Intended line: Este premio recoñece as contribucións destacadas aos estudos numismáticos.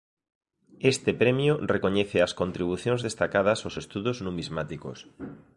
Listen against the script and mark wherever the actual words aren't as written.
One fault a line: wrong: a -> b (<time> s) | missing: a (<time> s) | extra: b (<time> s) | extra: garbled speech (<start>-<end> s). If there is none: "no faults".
no faults